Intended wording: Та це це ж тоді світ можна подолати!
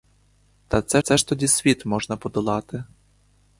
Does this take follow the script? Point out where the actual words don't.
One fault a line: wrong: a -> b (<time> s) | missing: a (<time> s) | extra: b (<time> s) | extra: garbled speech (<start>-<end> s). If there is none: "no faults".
no faults